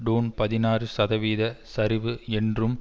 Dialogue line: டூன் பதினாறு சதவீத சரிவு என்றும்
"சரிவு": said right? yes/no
yes